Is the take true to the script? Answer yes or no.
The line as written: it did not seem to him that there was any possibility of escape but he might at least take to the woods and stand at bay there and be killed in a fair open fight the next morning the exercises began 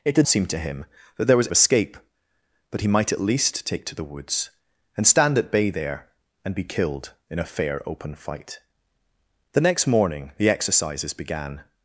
no